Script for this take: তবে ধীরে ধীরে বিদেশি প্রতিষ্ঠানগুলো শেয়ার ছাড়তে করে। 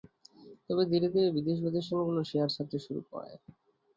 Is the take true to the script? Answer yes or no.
no